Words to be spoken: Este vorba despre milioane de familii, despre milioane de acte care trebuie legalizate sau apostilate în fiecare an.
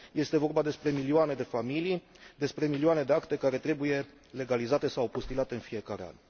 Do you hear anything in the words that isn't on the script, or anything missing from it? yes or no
no